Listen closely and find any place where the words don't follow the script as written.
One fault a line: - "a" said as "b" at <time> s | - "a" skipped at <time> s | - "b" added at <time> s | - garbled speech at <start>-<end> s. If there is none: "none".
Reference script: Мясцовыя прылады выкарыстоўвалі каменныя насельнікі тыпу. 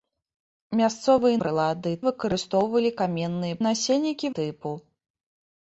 none